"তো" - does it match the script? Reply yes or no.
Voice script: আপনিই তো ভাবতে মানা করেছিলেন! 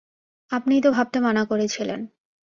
yes